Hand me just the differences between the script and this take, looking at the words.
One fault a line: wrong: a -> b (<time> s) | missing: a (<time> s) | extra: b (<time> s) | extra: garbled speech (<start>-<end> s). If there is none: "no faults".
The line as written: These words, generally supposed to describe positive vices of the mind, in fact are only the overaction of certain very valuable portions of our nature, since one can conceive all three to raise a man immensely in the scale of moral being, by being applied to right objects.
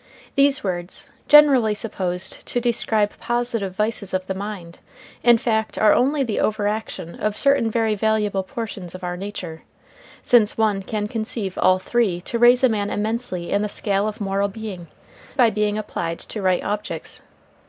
no faults